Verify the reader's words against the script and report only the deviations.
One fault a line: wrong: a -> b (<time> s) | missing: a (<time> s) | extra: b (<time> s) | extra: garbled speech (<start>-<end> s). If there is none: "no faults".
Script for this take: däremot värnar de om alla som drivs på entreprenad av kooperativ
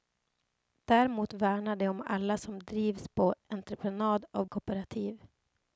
no faults